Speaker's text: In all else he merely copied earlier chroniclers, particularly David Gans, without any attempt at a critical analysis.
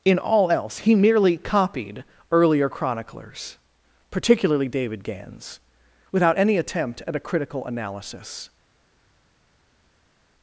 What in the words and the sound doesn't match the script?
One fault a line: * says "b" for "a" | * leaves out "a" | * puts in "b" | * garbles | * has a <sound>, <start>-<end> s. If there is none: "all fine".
all fine